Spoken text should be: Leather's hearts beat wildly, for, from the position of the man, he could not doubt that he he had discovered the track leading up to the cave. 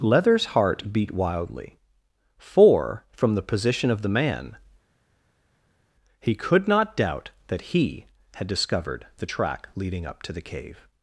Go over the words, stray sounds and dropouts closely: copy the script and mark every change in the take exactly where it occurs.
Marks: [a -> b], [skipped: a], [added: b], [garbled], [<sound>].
Leather's [hearts -> heart] beat wildly, for, from the position of the man, he could not doubt that he [skipped: he] had discovered the track leading up to the cave.